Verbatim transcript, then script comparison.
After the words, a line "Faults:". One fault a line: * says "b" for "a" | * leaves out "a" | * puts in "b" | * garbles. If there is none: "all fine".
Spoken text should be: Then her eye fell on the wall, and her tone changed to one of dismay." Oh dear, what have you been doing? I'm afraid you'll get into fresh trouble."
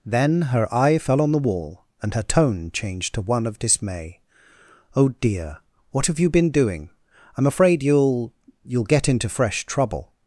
Then her eye fell on the wall, and her tone changed to one of dismay." Oh dear, what have you been doing? I'm afraid you'll you'll get into fresh trouble."
Faults:
* puts in "you'll"